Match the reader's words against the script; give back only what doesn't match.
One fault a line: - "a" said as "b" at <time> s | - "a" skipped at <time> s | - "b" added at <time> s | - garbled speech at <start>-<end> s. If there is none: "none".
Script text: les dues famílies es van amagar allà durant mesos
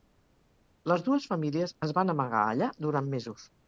none